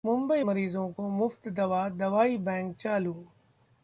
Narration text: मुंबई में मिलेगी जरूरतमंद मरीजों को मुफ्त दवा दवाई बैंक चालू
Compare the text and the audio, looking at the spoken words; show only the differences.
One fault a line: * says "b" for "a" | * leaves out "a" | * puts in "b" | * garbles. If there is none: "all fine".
* leaves out "में मिलेगी जरूरतमंद"